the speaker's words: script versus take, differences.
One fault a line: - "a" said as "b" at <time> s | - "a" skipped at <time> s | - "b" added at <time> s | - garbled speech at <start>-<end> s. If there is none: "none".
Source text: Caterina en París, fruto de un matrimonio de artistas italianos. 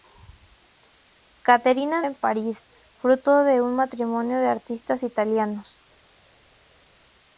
none